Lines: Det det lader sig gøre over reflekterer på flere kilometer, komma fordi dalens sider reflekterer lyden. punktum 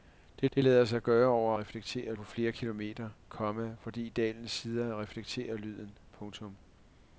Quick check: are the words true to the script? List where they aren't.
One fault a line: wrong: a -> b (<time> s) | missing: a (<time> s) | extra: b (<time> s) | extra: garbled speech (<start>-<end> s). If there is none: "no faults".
no faults